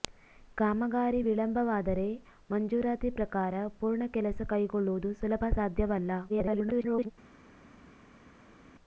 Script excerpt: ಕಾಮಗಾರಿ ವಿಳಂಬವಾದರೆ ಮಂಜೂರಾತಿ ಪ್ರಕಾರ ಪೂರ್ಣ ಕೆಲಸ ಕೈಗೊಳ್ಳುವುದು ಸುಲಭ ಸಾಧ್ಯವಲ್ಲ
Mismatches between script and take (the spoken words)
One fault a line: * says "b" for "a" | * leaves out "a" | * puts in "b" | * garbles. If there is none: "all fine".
* garbles